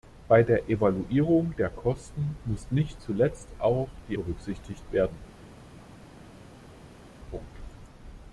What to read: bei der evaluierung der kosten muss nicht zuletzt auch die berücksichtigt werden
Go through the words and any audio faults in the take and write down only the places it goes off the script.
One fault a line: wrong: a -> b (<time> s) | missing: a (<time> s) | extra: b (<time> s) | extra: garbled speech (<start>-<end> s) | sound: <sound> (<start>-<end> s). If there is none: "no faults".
no faults